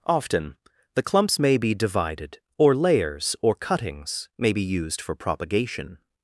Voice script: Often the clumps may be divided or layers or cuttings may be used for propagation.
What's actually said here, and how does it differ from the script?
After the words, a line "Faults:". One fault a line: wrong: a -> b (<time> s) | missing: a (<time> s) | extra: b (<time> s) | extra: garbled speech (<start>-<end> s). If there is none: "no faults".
Often the clumps may be divided or layers or cuttings may be used for propagation.
Faults:
no faults